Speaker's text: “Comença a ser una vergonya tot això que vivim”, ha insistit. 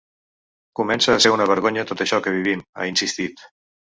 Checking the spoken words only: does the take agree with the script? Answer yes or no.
yes